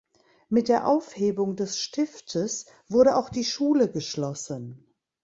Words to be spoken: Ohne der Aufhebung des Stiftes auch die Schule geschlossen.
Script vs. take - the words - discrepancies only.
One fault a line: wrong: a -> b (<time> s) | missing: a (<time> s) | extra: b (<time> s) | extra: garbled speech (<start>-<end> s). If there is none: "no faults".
wrong: Ohne -> Mit (0.5 s)
extra: wurde (2.9 s)